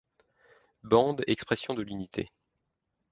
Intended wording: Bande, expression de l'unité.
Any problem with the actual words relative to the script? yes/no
no